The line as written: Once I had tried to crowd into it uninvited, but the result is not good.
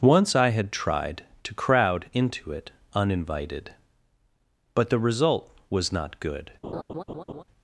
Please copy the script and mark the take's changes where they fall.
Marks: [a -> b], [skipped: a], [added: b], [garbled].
Once I had tried to crowd into it uninvited, but the result [is -> was] not good.